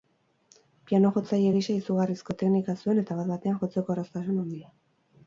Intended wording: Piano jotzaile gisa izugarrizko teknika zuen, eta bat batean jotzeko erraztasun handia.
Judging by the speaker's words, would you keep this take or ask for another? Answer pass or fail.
pass